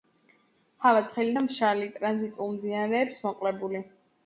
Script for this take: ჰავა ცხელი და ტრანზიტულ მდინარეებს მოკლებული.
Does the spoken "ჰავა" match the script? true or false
true